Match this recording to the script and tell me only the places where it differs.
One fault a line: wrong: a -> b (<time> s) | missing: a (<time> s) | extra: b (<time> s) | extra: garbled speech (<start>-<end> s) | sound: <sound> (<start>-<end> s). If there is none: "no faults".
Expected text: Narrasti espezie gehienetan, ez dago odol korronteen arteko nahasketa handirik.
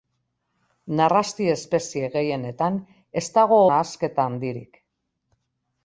missing: odol korronteen arteko (3.6 s)